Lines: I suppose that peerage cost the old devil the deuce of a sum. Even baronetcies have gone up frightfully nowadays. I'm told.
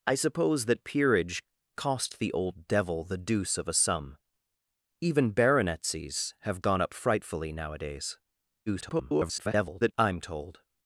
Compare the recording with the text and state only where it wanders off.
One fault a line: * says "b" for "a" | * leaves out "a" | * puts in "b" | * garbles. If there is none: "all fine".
* garbles